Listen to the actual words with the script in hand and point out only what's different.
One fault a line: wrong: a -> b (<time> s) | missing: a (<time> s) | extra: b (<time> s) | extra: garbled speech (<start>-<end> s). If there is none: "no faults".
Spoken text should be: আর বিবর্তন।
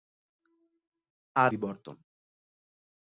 no faults